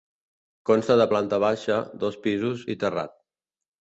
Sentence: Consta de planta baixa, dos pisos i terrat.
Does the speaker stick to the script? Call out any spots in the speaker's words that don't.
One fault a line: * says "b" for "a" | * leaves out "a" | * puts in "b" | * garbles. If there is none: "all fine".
all fine